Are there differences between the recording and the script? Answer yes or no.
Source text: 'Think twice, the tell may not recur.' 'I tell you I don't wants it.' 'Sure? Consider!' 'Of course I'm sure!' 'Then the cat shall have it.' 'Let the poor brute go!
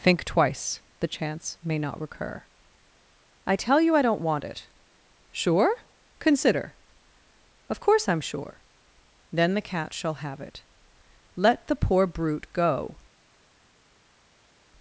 yes